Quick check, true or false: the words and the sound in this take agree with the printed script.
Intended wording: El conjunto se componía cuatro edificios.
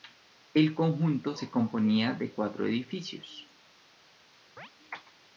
false